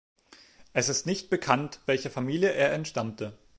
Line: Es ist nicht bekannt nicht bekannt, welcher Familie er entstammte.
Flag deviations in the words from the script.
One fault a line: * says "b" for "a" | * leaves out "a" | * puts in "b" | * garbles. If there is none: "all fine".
* leaves out "nicht bekannt"